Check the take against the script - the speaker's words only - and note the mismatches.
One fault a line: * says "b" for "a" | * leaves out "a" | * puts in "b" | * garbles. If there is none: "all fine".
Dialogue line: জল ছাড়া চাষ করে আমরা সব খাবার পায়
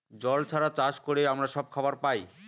all fine